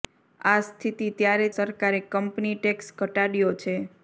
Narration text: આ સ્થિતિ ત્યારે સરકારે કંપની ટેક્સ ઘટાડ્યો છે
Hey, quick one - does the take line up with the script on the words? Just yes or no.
yes